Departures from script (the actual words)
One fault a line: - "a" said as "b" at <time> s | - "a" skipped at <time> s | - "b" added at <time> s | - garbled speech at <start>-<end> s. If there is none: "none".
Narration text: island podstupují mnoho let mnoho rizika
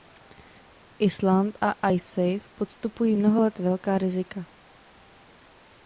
- "a icesave" added at 1.6 s
- "mnoho" said as "velká" at 3.6 s